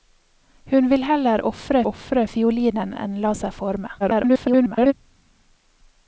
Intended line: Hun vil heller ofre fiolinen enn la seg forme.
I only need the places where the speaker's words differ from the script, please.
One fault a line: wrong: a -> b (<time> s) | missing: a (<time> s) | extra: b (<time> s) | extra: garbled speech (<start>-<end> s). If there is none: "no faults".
extra: ofre (1.9 s)
extra: garbled speech (4.0-4.9 s)